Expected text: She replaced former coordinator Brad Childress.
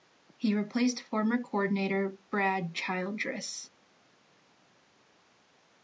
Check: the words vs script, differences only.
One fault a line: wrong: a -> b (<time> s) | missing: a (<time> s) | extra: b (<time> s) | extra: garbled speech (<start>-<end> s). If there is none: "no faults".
wrong: She -> He (0.4 s)